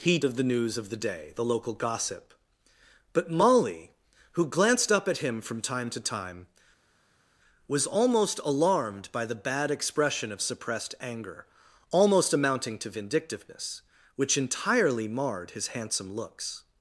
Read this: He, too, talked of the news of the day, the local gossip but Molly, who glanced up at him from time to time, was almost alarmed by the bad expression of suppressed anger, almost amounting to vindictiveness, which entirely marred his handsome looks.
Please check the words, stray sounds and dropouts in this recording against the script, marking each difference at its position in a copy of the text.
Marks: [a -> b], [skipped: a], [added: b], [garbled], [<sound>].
He, [skipped: too, talked] of the news of the day, the local gossip but Molly, who glanced up at him from time to time, was almost alarmed by the bad expression of suppressed anger, almost amounting to vindictiveness, which entirely marred his handsome looks.